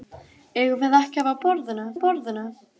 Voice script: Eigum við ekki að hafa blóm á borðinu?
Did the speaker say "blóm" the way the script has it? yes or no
no